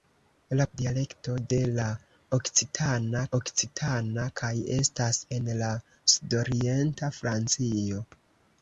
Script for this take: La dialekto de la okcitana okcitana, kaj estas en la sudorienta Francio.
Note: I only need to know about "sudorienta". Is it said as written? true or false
true